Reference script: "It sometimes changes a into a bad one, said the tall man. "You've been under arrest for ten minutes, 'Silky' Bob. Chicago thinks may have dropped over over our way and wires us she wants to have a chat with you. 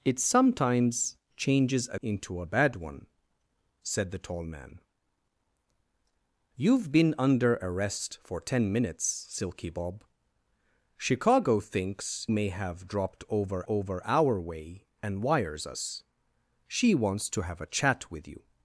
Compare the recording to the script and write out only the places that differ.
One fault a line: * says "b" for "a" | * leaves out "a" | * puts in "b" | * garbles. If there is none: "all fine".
all fine